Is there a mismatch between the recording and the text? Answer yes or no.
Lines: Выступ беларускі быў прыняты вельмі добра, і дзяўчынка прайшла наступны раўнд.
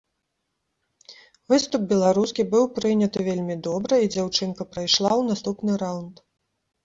yes